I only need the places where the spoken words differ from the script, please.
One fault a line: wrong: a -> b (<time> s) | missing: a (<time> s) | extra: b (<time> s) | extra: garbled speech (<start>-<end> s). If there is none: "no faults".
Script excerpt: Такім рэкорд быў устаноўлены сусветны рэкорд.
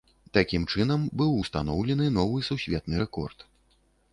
wrong: рэкорд -> чынам (0.8 s)
extra: новы (2.2 s)